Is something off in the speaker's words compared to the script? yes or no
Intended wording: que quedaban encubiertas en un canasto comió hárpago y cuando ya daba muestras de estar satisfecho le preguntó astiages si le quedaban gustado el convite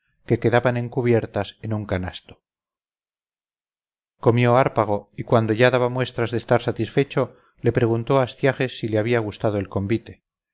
yes